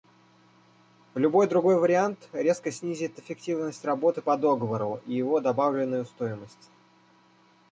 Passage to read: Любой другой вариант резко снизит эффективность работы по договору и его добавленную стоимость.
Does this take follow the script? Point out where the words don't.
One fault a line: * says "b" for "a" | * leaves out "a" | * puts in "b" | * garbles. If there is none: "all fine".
all fine